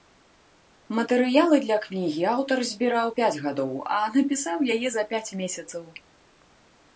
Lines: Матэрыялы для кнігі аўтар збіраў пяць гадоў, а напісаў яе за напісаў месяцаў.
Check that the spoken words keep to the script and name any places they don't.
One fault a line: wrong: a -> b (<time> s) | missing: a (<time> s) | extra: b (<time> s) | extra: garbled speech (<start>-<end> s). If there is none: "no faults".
wrong: напісаў -> пяць (5.1 s)